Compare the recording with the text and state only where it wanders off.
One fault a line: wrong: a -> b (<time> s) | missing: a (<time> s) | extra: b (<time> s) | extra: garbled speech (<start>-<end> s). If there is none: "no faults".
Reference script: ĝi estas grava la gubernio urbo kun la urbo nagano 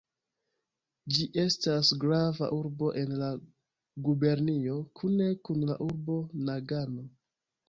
extra: urbo en (2.6 s)
wrong: urbo -> kune (5.0 s)